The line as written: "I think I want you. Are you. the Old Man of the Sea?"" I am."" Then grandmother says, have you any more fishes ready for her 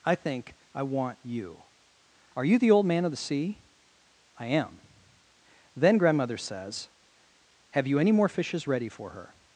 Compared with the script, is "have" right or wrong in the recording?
right